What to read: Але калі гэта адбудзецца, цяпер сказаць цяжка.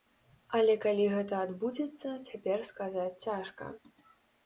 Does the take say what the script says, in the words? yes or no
yes